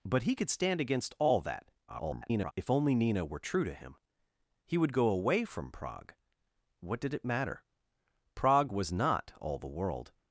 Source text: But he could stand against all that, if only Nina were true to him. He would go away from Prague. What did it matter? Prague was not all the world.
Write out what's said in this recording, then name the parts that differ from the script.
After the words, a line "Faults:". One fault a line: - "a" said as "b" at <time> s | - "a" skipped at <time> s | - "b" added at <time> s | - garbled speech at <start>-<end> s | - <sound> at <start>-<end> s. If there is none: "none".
But he could stand against all that, [garbled] if only Nina were true to him. He would go away from Prague. What did it matter? Prague was not all the world.
Faults:
- garbled speech at 1.9-2.5 s